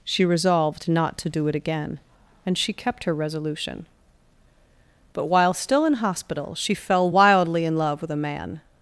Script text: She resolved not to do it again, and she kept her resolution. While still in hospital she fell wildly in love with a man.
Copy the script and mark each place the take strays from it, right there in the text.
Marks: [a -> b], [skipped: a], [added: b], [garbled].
She resolved not to do it again, and she kept her resolution. [added: But] While still in hospital she fell wildly in love with a man.